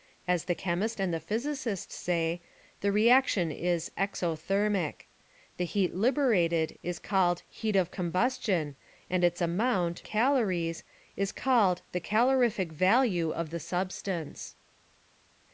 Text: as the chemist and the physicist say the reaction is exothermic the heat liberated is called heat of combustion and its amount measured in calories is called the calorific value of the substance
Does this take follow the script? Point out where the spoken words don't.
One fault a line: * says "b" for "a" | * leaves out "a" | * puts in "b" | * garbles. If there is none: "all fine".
* leaves out "measured in"